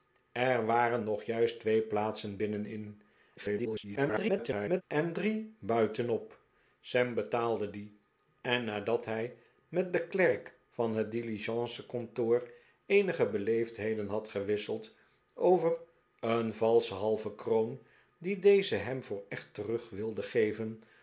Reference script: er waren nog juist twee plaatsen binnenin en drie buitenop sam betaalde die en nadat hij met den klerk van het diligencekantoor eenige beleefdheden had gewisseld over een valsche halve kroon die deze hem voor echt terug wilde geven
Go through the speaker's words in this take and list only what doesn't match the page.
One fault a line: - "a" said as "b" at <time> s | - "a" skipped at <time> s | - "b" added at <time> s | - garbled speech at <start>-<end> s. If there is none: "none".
- garbled speech at 3.4-4.8 s